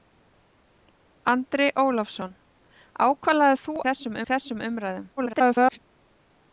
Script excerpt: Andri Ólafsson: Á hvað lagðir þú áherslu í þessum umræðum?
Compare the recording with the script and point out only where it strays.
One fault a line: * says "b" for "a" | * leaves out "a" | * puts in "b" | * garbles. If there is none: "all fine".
* says "þessum" for "áherslu"
* garbles